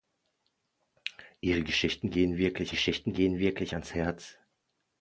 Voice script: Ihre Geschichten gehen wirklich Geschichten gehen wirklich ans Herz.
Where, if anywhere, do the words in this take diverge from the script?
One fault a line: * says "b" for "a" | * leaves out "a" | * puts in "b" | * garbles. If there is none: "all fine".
all fine